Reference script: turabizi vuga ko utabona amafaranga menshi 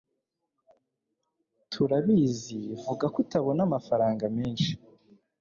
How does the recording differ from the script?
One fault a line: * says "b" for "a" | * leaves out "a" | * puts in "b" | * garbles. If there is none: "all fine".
all fine